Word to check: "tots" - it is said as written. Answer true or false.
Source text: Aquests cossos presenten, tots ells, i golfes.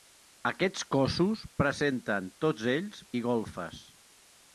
true